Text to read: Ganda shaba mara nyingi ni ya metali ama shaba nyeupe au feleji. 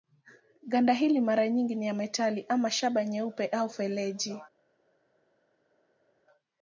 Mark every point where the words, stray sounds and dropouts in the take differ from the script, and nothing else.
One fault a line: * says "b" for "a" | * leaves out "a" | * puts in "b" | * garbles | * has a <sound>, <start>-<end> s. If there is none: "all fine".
* says "hili" for "shaba"